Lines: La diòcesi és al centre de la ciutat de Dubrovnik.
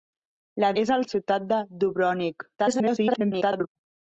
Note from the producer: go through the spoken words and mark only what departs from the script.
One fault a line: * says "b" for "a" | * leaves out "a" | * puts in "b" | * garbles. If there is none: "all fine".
* leaves out "diòcesi"
* leaves out "centre de la"
* garbles